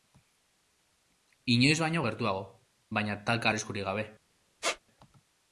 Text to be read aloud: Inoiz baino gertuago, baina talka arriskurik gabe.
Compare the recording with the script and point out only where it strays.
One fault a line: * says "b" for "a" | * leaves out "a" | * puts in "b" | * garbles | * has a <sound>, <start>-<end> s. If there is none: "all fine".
* has a squeak, 4.6-4.8 s